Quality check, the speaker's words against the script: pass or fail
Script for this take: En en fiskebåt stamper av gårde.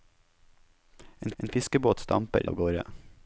pass